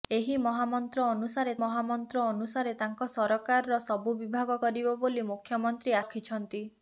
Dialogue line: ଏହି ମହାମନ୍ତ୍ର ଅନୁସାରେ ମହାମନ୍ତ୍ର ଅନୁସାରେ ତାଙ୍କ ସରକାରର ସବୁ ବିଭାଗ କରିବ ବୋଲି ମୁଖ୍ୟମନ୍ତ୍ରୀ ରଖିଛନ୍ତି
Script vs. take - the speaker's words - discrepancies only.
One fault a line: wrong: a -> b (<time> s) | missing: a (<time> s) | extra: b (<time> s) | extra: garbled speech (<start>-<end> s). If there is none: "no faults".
no faults